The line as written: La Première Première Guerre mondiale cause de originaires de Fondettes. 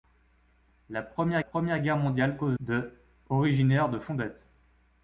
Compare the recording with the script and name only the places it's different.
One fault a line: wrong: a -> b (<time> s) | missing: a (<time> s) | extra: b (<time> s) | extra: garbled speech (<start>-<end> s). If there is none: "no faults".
no faults